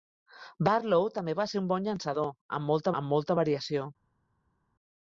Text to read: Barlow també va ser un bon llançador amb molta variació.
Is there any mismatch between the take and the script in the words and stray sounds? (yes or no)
yes